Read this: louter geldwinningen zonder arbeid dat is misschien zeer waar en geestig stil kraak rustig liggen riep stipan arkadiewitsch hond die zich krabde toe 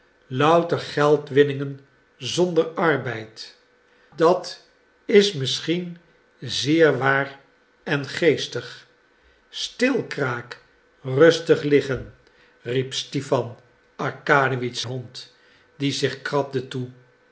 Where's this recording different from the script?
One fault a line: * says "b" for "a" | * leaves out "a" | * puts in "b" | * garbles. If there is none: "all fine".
all fine